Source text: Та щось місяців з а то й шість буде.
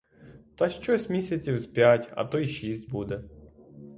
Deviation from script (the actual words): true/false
true